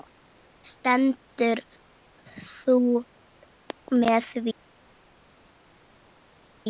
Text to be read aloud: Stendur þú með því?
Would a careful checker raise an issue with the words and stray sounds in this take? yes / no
no